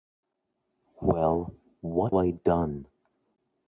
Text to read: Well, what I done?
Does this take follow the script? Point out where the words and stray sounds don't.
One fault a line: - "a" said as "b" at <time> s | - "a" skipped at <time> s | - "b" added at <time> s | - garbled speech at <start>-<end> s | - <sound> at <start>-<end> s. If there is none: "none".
none